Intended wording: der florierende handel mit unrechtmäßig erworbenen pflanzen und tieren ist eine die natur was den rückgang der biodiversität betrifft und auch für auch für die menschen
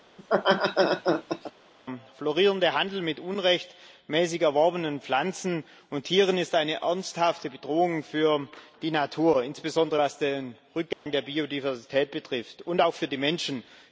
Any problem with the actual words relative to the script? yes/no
yes